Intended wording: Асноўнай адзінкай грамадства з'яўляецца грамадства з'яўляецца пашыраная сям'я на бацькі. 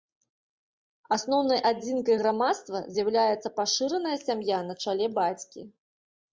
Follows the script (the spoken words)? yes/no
no